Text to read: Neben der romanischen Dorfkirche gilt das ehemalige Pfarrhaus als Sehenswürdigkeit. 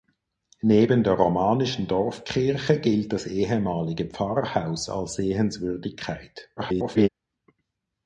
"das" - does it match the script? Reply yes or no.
yes